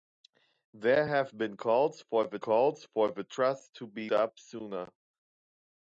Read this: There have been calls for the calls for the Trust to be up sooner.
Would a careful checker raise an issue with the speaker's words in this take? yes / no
no